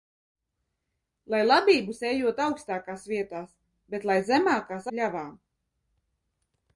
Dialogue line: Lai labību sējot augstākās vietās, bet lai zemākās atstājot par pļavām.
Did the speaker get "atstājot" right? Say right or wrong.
wrong